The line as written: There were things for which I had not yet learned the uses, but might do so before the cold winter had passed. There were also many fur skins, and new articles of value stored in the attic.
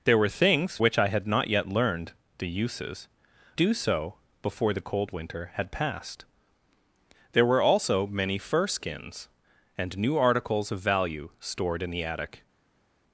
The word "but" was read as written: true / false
false